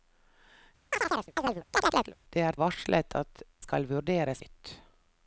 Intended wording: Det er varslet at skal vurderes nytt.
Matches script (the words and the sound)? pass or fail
fail